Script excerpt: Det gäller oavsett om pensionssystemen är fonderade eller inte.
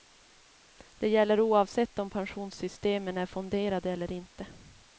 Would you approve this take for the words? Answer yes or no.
yes